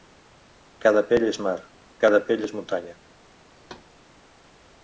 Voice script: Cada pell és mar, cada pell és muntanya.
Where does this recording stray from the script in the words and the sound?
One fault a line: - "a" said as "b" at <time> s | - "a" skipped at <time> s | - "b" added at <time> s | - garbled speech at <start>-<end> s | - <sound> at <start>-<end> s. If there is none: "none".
- thud at 3.6-3.9 s